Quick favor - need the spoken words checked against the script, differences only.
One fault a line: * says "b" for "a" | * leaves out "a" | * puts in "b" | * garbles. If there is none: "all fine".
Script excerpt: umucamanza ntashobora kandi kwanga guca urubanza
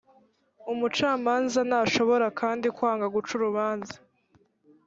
all fine